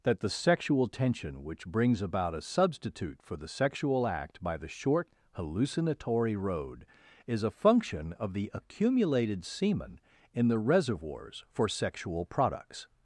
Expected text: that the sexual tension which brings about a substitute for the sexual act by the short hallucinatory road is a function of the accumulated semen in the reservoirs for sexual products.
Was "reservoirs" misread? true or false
false